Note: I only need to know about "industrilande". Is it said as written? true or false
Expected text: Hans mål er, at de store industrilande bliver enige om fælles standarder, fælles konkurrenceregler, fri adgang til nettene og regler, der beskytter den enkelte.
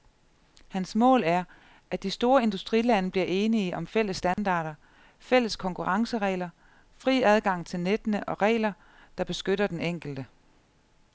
true